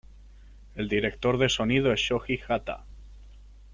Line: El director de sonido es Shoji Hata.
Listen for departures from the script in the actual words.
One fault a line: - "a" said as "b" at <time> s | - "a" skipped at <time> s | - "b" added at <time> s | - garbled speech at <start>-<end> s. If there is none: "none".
none